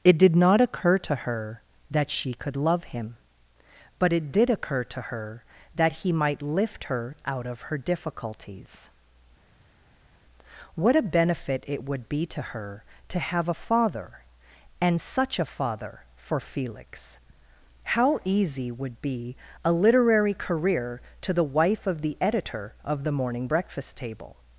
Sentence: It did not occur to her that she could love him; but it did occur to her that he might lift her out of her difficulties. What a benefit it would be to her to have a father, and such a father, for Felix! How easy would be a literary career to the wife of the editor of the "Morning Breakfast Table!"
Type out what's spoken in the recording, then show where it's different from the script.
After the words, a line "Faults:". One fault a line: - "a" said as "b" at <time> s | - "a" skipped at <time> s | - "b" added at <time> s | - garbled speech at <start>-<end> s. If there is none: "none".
It did not occur to her that she could love him; but it did occur to her that he might lift her out of her difficulties. What a benefit it would be to her to have a father, and such a father, for Felix! How easy would be a literary career to the wife of the editor of the "Morning Breakfast Table!"
Faults:
none